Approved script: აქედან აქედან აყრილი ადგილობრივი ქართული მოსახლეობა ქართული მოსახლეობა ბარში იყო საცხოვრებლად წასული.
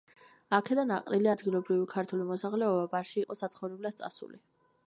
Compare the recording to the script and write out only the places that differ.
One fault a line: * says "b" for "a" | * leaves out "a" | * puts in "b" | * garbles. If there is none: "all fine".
* leaves out "აქედან"
* leaves out "ქართული მოსახლეობა"